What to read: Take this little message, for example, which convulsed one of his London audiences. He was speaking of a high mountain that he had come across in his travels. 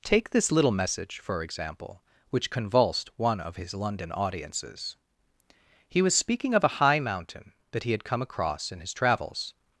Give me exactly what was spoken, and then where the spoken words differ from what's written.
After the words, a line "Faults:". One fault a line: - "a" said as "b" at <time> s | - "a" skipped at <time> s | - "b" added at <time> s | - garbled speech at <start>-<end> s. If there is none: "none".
Take this little message, for example, which convulsed one of his London audiences. He was speaking of a high mountain that he had come across in his travels.
Faults:
none